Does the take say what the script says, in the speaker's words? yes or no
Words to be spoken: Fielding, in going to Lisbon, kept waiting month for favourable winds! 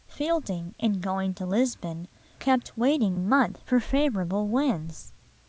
yes